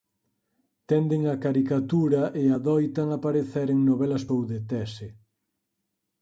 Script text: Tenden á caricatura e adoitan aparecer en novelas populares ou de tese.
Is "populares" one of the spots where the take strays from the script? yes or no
yes